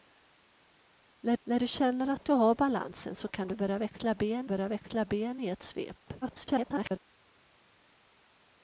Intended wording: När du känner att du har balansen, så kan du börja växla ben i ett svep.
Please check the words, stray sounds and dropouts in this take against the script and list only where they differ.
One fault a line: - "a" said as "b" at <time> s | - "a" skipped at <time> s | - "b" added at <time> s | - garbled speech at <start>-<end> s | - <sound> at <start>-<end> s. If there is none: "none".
- "när" added at 1.4 s
- "börja växla ben" added at 4.4 s
- garbled speech at 6.2-7.0 s